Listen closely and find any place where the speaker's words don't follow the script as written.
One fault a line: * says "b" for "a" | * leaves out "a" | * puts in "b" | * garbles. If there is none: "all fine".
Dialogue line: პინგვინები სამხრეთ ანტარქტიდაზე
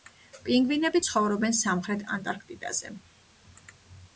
* puts in "ცხოვრობენ"